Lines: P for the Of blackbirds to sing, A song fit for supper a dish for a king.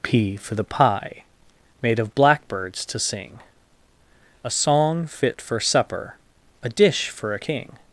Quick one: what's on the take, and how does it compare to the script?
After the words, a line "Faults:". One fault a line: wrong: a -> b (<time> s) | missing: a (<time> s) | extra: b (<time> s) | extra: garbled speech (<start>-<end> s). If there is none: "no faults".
P for the Pie made of blackbirds to sing, A song fit for supper a dish for a king.
Faults:
extra: Pie made (0.6 s)